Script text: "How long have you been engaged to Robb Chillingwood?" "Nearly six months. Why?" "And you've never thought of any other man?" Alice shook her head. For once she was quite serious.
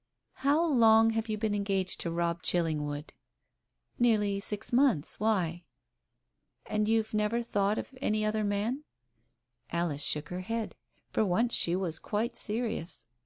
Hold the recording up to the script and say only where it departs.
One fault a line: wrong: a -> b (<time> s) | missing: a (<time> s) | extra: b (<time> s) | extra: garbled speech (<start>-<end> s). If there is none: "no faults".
no faults